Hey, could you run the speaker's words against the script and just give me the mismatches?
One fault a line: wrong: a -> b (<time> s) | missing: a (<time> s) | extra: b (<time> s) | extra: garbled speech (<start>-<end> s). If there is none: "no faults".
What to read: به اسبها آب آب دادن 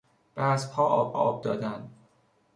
no faults